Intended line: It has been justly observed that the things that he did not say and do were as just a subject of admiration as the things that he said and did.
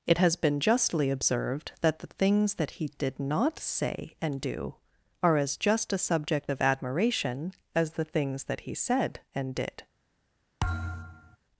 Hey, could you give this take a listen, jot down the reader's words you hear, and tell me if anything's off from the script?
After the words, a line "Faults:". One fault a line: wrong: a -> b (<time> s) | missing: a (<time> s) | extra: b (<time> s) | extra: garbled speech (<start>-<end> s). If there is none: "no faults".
It has been justly observed that the things that he did not say and do are as just a subject of admiration as the things that he said and did.
Faults:
wrong: were -> are (5.2 s)